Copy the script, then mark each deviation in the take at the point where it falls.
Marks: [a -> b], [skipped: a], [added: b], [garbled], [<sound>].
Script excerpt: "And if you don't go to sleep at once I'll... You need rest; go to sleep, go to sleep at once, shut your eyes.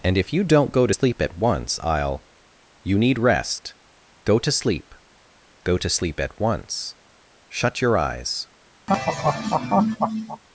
"And if you don't go to sleep at once I'll... You need rest; go to sleep, go to sleep at once, shut your eyes. [laugh]